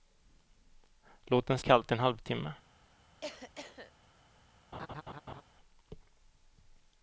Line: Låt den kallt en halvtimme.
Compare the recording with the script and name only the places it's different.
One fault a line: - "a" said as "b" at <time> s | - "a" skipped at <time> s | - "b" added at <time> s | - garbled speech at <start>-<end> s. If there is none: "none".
none